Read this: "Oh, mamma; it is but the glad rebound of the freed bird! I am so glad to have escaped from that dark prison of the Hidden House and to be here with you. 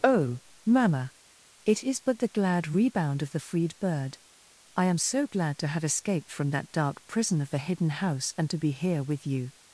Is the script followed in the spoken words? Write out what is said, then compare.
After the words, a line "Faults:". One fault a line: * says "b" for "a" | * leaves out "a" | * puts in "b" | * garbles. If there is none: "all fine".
"Oh, mamma; it is but the glad rebound of the freed bird! I am so glad to have escaped from that dark prison of the Hidden House and to be here with you.
Faults:
all fine